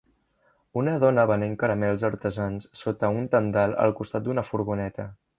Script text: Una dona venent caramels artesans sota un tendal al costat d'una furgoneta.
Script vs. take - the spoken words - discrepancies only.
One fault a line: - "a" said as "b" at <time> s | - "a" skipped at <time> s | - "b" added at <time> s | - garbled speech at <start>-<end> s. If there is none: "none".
none